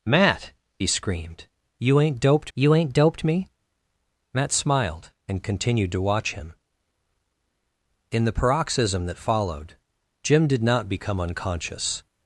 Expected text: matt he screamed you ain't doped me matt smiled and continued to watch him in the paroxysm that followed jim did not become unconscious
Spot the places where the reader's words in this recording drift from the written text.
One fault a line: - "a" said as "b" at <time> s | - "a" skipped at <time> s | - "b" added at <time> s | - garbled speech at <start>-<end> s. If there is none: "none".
- "you ain't doped" added at 2.5 s